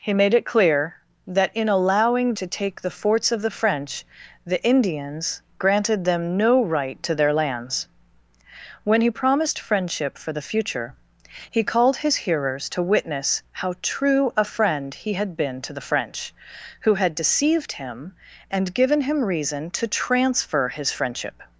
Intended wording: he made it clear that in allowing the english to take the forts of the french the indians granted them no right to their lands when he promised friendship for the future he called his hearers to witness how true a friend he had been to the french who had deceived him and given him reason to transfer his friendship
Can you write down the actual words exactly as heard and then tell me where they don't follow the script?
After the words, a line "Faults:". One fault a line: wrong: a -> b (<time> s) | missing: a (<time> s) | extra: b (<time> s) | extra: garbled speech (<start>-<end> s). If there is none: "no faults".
he made it clear that in allowing to take the forts of the french the indians granted them no right to their lands when he promised friendship for the future he called his hearers to witness how true a friend he had been to the french who had deceived him and given him reason to transfer his friendship
Faults:
missing: the english (2.3 s)